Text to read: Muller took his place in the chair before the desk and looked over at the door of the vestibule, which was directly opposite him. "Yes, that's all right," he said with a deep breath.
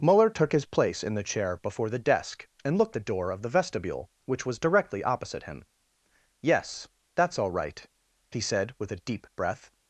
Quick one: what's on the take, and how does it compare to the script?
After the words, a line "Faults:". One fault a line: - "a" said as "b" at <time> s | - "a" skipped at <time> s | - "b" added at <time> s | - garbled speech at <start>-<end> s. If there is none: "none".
Muller took his place in the chair before the desk and looked the door of the vestibule, which was directly opposite him. "Yes, that's all right," he said with a deep breath.
Faults:
- "over at" skipped at 3.0 s